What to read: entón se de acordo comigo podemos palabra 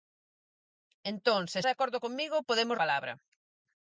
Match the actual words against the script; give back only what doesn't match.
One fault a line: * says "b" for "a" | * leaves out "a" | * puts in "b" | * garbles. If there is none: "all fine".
all fine